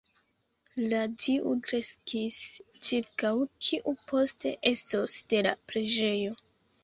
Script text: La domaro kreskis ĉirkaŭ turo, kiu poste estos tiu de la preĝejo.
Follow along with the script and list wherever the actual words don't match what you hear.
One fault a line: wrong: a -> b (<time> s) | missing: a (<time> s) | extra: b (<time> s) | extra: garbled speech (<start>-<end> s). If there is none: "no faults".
wrong: domaro -> tiu (1.3 s)
missing: turo (3.3 s)
missing: tiu (5.2 s)